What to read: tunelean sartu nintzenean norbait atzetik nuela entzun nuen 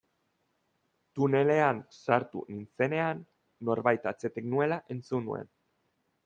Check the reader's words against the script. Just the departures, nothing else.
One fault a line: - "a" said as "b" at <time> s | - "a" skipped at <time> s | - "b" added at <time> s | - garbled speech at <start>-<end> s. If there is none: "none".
none